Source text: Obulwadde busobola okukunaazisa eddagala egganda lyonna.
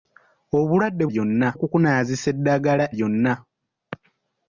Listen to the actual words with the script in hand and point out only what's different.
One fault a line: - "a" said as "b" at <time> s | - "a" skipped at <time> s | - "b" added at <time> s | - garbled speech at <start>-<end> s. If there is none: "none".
- "busobola" said as "lyonna" at 1.1 s
- "egganda" skipped at 2.8 s